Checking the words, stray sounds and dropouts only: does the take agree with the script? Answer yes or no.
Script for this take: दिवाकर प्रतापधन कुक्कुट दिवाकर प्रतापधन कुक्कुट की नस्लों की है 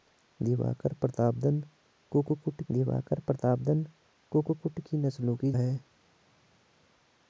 yes